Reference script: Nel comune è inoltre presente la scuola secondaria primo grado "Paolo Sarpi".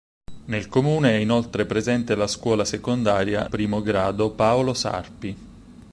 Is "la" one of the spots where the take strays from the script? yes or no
no